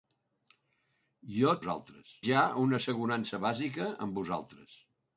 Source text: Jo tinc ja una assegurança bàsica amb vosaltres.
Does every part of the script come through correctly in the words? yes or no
no